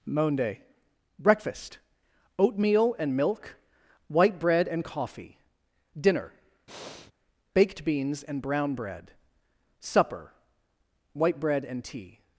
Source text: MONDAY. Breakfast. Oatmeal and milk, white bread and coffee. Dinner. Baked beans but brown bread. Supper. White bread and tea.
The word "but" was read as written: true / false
false